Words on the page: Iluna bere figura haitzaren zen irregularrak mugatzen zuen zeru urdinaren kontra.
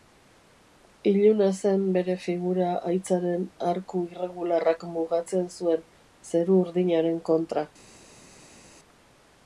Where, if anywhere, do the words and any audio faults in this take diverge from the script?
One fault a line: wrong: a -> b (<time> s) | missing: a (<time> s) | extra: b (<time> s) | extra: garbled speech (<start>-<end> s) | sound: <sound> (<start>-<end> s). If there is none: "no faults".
extra: zen (1.6 s)
wrong: zen -> arku (3.7 s)